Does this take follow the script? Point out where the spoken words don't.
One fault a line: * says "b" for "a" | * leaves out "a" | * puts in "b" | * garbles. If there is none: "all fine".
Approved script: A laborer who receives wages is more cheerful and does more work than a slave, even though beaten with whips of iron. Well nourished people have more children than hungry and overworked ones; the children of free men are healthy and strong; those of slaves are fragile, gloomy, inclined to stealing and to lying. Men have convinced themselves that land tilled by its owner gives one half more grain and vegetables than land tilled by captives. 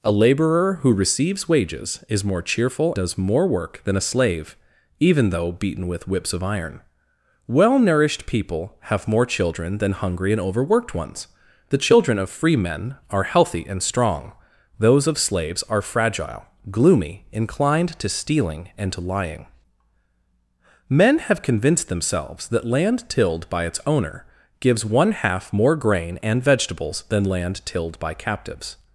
* leaves out "and"